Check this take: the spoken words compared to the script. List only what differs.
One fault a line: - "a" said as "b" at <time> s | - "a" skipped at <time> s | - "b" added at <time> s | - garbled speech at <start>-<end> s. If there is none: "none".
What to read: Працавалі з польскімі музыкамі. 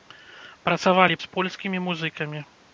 none